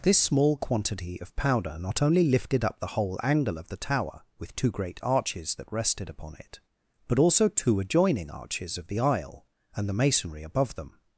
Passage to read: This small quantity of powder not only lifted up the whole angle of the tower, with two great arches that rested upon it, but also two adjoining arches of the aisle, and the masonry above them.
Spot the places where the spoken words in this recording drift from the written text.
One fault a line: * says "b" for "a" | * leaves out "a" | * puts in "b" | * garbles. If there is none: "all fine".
all fine